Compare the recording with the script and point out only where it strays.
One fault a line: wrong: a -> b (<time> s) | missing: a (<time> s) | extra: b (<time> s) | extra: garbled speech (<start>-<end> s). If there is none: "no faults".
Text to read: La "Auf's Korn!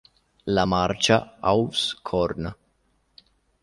extra: marcia (0.6 s)